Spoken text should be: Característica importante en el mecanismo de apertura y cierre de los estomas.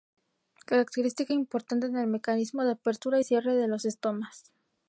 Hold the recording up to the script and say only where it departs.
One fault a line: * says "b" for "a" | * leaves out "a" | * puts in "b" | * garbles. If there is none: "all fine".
all fine